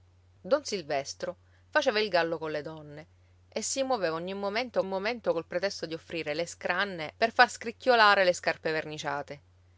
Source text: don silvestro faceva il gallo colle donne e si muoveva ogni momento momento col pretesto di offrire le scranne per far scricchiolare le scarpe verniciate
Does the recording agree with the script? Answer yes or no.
yes